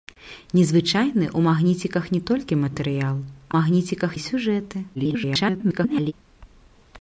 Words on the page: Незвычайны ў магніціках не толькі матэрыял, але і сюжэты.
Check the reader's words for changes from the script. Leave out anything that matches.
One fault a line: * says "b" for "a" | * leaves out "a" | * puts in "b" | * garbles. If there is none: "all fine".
* says "магніціках" for "але"
* garbles